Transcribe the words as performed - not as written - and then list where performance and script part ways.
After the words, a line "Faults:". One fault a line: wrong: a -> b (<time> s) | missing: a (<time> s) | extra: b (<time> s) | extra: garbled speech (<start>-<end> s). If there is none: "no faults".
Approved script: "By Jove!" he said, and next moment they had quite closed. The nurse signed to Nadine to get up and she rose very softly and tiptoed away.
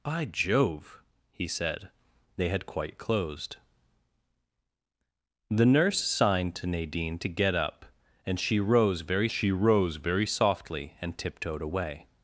"By Jove!" he said, they had quite closed. The nurse signed to Nadine to get up and she rose very she rose very softly and tiptoed away.
Faults:
missing: and next moment (1.9 s)
extra: she rose very (9.3 s)